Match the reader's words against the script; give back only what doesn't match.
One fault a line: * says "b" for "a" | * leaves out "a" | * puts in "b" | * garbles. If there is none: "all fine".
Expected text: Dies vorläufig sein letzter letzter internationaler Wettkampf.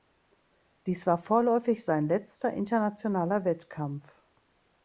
* puts in "war"
* leaves out "letzter"